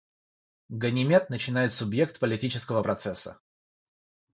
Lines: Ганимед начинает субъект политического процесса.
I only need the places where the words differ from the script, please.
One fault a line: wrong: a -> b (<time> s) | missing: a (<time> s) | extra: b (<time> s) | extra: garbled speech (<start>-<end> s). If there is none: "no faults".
no faults